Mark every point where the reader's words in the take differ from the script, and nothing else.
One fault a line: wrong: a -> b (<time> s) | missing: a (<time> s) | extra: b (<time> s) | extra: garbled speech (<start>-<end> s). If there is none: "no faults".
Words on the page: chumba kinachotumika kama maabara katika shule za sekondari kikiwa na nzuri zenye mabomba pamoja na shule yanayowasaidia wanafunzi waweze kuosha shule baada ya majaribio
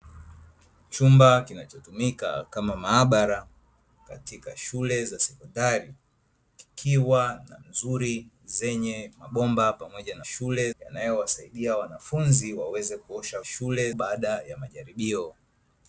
no faults